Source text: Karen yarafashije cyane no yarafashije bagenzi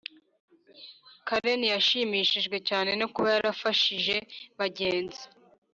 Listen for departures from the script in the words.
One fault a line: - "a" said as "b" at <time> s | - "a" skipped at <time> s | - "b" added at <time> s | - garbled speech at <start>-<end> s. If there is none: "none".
- "yarafashije" said as "yashimishijwe" at 1.7 s
- "kuba" added at 3.1 s